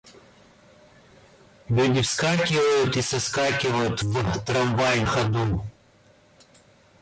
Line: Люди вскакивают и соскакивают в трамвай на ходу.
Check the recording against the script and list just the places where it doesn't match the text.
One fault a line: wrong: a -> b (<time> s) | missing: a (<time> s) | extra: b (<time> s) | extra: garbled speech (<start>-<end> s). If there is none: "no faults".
missing: на (5.0 s)